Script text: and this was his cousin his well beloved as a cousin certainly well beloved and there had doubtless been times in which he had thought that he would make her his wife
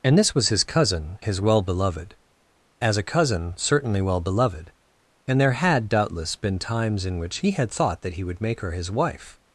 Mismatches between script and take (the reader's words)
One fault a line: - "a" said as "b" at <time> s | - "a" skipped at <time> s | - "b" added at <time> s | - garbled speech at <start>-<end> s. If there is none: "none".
none